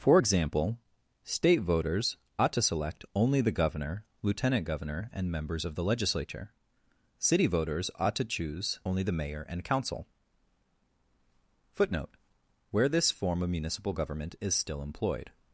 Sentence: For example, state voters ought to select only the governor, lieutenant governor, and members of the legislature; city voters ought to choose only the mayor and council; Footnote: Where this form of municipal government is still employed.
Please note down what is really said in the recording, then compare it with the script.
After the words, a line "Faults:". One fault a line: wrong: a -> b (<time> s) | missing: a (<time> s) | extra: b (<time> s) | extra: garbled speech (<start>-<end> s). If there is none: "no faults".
For example, state voters ought to select only the governor, lieutenant governor, and members of the legislature; city voters ought to choose only the mayor and council; Footnote: Where this form of municipal government is still employed.
Faults:
no faults